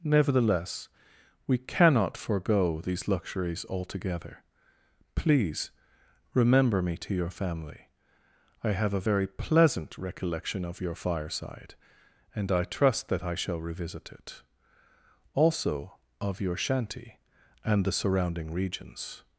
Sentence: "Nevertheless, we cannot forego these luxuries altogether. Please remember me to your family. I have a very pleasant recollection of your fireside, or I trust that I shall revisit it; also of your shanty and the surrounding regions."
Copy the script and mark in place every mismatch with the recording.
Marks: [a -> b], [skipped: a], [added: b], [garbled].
"Nevertheless, we cannot forego these luxuries altogether. Please remember me to your family. I have a very pleasant recollection of your fireside, [or -> and] I trust that I shall revisit it; also of your shanty and the surrounding regions."